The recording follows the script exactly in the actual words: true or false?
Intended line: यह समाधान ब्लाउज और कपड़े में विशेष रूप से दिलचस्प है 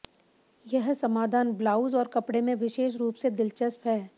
true